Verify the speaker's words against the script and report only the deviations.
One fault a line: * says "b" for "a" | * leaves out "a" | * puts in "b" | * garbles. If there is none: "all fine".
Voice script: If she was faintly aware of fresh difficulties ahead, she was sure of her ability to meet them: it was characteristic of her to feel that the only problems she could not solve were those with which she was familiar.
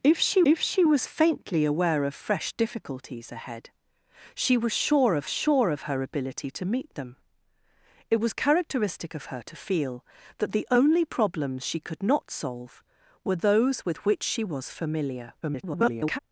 * puts in "if she"
* puts in "sure of"
* garbles